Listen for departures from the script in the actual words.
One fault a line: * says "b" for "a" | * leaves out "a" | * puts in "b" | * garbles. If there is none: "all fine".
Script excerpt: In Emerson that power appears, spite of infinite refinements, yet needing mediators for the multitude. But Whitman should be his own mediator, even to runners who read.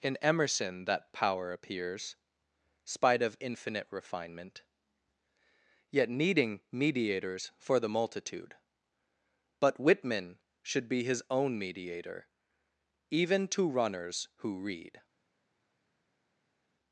* says "refinement" for "refinements"